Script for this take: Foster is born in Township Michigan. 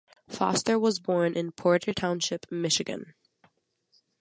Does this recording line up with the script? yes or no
no